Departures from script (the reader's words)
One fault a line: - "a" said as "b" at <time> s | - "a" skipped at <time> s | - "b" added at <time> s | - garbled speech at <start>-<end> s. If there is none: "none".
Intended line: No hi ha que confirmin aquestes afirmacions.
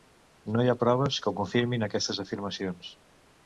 - "proves" added at 0.8 s